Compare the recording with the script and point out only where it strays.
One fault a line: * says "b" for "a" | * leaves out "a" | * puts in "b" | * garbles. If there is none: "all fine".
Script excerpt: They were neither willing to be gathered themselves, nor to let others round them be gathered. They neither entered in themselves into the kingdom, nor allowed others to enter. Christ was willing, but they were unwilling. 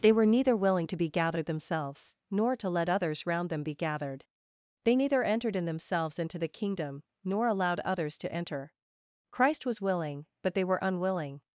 all fine